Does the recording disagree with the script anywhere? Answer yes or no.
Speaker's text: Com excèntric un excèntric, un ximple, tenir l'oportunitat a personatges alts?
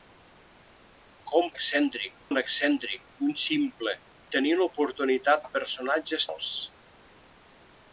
no